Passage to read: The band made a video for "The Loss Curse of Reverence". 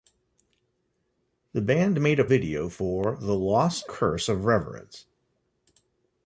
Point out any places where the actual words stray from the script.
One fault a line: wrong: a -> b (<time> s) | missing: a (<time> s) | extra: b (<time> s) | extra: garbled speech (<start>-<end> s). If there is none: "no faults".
no faults